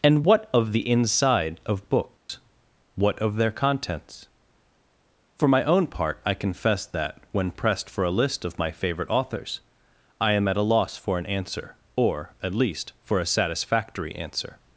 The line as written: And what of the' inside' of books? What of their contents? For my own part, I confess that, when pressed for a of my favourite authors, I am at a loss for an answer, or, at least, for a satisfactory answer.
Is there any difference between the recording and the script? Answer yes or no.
yes